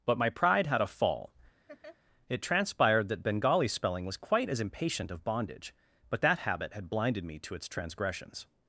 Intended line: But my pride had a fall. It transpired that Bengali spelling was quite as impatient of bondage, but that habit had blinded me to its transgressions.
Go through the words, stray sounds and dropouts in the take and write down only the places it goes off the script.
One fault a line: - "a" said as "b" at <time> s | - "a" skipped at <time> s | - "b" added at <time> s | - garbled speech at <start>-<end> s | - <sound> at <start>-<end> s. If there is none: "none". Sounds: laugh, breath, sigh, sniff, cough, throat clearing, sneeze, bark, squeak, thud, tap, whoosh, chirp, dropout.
- laugh at 1.7-2.0 s